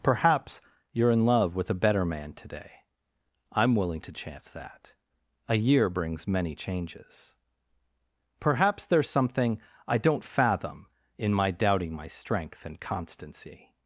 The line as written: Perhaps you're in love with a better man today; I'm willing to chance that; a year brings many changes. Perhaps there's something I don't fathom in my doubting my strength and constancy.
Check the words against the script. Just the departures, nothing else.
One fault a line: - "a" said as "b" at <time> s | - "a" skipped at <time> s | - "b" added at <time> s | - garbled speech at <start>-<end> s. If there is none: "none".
none